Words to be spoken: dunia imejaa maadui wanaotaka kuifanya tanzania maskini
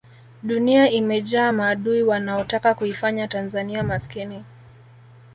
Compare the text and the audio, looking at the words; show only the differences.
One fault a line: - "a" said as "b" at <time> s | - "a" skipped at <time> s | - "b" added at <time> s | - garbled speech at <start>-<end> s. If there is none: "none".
none